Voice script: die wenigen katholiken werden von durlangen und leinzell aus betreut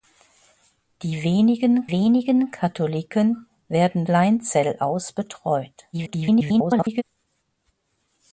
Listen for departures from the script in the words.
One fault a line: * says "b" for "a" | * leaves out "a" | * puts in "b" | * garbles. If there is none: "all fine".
* puts in "wenigen"
* leaves out "von durlangen und"
* garbles